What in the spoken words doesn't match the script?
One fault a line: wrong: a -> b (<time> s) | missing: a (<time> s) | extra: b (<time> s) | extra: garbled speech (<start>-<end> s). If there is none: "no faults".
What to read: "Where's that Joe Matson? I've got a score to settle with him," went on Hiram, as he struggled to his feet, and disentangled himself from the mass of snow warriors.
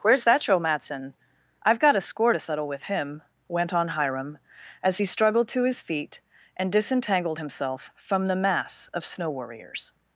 no faults